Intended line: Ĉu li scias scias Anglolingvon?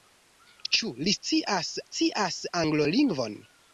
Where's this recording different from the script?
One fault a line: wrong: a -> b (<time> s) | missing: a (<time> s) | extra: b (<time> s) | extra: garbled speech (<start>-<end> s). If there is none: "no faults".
no faults